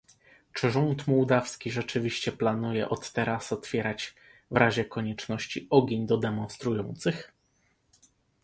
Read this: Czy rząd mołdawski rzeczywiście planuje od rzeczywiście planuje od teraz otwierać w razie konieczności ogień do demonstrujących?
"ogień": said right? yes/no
yes